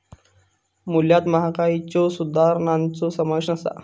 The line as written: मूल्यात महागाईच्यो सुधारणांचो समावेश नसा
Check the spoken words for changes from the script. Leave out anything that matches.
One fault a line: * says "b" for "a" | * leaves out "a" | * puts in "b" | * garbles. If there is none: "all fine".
all fine